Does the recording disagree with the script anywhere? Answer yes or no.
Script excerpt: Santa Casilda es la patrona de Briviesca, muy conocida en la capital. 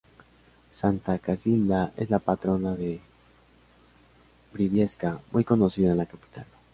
no